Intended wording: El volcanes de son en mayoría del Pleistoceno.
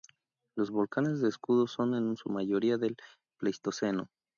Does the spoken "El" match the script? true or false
false